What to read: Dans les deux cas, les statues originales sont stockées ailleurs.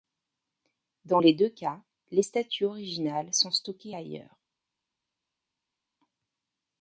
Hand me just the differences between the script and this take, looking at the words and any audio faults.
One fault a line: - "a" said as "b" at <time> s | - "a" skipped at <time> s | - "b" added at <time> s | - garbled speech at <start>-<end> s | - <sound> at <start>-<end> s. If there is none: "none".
none